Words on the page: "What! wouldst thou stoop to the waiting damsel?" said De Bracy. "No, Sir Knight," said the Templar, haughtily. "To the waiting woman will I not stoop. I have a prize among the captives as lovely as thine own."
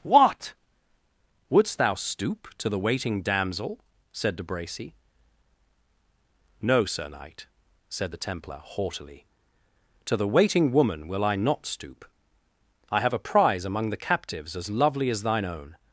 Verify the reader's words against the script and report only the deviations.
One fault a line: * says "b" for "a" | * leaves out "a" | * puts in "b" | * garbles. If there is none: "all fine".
all fine